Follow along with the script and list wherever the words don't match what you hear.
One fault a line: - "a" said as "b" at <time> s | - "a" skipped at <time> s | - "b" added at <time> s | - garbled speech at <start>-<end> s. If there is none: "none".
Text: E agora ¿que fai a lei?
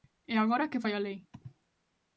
none